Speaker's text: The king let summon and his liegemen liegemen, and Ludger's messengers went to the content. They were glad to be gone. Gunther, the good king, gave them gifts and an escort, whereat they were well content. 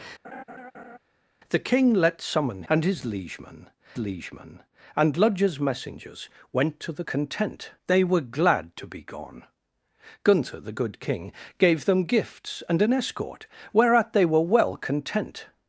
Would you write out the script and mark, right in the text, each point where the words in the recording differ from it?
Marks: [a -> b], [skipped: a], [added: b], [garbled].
The king let summon and his liegemen liegemen, and Ludger's messengers went to the content. They were glad to be gone. Gunther, the good king, gave them gifts and an escort, whereat they were well content.